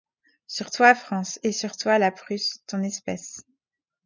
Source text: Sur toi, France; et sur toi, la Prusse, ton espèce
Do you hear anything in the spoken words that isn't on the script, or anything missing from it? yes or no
no